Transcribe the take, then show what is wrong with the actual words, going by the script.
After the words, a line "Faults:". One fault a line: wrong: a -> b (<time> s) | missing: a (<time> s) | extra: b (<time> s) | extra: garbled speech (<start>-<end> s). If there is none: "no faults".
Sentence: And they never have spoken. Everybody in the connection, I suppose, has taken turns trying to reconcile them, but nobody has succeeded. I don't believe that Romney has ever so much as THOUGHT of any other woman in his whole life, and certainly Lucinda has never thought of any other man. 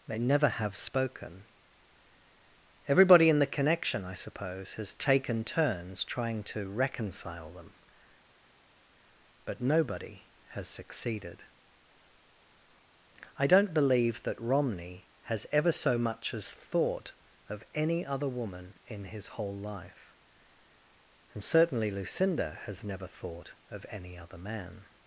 they never have spoken. Everybody in the connection, I suppose, has taken turns trying to reconcile them, but nobody has succeeded. I don't believe that Romney has ever so much as THOUGHT of any other woman in his whole life, and certainly Lucinda has never thought of any other man.
Faults:
missing: And (0.1 s)